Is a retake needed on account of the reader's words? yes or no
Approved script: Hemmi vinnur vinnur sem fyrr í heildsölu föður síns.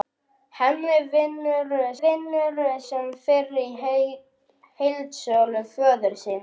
no